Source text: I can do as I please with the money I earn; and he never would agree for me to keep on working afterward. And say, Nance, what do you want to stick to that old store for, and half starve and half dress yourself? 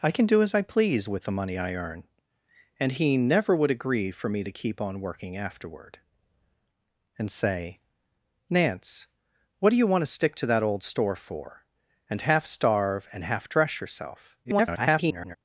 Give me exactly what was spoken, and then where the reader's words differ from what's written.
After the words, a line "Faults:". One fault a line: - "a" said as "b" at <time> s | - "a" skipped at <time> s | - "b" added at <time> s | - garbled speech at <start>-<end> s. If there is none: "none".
I can do as I please with the money I earn; and he never would agree for me to keep on working afterward. And say, Nance, what do you want to stick to that old store for, and half starve and half dress yourself? [garbled]
Faults:
- garbled speech at 14.4-15.4 s